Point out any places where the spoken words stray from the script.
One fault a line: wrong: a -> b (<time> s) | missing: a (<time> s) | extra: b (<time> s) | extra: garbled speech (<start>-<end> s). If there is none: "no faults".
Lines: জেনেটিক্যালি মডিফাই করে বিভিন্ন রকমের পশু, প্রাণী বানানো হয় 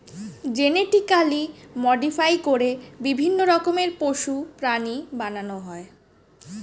no faults